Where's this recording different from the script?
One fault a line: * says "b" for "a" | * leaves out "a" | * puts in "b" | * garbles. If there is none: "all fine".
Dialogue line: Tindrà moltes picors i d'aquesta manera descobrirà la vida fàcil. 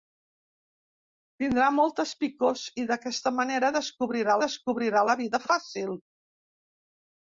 * puts in "descobrirà"